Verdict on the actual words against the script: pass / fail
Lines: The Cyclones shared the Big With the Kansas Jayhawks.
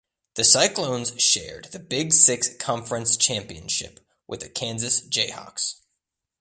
fail